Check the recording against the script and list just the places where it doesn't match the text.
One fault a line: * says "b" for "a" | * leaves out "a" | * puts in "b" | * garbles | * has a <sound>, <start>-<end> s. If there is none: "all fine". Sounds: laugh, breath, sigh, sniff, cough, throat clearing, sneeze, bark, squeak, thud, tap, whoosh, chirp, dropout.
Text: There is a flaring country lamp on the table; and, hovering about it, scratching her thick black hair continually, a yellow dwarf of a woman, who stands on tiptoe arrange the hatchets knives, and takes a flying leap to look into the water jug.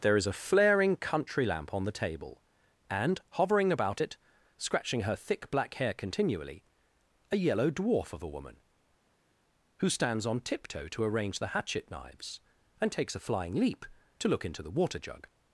* puts in "to"
* says "hatchet" for "hatchets"